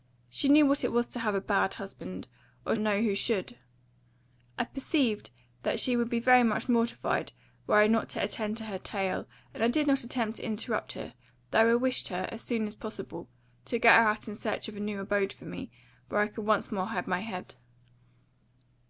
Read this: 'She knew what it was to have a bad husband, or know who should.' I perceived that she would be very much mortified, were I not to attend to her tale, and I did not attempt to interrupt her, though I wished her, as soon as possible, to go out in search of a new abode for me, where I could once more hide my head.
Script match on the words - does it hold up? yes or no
yes